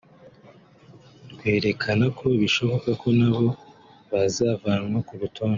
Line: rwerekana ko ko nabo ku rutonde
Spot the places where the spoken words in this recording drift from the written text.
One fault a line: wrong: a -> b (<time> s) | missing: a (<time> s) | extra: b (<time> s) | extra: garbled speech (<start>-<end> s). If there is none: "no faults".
extra: bishoboka (2.4 s)
extra: bazavanwa (4.1 s)